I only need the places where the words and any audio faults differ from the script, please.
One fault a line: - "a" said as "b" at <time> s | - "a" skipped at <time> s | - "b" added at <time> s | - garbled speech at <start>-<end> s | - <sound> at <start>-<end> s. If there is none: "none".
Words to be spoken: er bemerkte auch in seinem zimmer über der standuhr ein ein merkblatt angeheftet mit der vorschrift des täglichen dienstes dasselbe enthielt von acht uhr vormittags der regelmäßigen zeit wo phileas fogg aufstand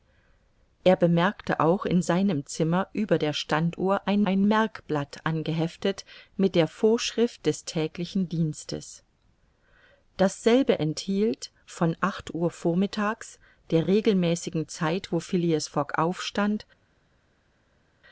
none